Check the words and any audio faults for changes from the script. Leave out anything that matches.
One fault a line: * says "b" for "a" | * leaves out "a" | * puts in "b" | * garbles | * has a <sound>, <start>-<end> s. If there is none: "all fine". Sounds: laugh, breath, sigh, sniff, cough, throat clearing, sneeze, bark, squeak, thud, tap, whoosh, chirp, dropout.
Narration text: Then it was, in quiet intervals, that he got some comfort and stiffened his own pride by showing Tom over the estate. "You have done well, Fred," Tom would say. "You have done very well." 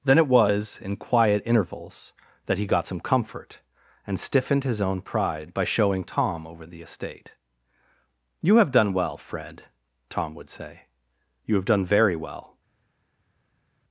all fine